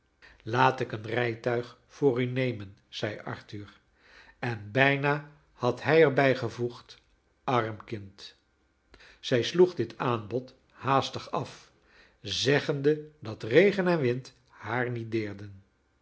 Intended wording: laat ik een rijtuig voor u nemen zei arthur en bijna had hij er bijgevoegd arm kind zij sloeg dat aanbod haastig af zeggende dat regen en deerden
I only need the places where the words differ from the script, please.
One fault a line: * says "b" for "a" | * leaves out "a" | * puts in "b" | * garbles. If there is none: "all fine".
* says "dit" for "dat"
* puts in "wind haar niet"